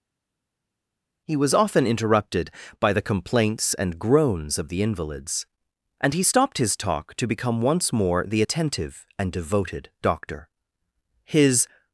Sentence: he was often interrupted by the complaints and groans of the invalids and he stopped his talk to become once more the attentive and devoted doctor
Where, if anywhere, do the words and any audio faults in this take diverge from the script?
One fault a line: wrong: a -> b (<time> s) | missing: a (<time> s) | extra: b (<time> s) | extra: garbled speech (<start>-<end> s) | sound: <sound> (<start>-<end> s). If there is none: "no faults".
extra: his (11.2 s)